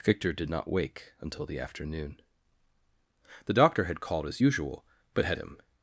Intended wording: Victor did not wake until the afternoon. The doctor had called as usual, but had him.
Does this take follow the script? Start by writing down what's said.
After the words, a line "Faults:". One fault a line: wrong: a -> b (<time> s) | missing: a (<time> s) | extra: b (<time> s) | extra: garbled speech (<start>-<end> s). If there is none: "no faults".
Victor did not wake until the afternoon. The doctor had called as usual, but had him.
Faults:
no faults